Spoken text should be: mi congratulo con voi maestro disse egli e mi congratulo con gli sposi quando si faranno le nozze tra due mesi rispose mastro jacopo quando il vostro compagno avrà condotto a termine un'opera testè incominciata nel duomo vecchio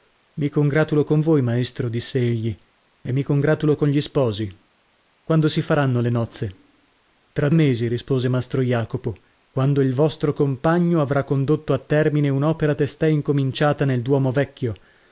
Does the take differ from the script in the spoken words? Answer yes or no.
yes